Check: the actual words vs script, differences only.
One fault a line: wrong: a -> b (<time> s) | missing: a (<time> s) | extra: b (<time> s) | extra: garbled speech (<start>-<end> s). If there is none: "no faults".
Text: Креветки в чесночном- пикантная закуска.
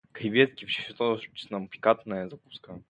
no faults